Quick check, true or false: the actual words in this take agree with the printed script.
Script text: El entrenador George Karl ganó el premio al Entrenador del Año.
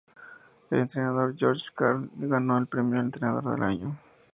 true